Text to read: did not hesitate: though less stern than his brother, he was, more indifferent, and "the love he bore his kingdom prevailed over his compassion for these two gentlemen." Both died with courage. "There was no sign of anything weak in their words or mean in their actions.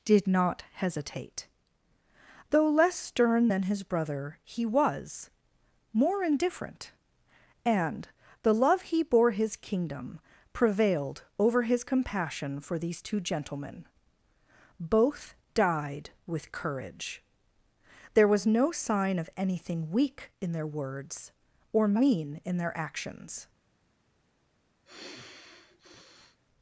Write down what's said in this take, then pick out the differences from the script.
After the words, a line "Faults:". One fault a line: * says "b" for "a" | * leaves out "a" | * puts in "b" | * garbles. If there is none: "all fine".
did not hesitate: though less stern than his brother, he was, more indifferent, and "the love he bore his kingdom prevailed over his compassion for these two gentlemen." Both died with courage. "There was no sign of anything weak in their words or mean in their actions.
Faults:
all fine